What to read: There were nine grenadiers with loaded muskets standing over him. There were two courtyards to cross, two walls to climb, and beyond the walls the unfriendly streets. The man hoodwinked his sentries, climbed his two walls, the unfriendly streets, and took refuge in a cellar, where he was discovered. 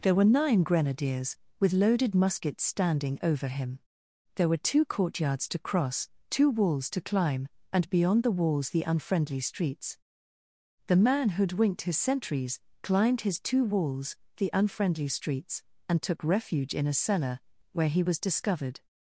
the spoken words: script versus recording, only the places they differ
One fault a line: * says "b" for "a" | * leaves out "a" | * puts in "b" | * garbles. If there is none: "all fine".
all fine